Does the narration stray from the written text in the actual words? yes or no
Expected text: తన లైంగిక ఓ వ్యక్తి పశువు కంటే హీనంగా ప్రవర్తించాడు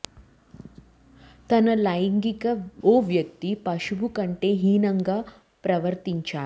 no